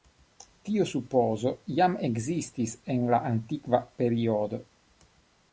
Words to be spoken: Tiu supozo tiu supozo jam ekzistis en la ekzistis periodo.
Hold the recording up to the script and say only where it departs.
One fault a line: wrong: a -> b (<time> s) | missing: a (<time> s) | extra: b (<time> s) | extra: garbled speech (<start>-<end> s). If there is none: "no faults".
missing: tiu supozo (1.5 s)
wrong: ekzistis -> antikva (3.3 s)